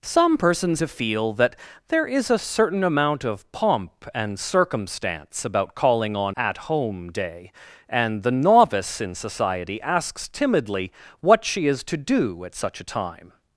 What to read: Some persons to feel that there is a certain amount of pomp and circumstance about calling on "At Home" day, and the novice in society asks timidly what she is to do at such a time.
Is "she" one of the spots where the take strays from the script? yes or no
no